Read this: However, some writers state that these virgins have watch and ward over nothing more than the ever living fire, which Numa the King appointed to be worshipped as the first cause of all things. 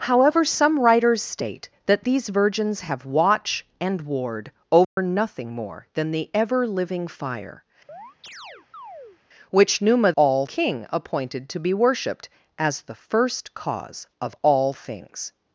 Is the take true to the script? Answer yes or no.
no